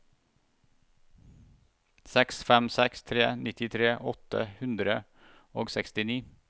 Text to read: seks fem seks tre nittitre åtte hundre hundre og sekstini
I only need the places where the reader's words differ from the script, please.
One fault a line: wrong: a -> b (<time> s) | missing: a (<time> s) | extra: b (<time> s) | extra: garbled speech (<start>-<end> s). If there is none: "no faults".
missing: hundre (5.0 s)